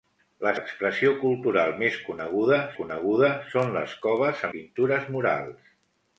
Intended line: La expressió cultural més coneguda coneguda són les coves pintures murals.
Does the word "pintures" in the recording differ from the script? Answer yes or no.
no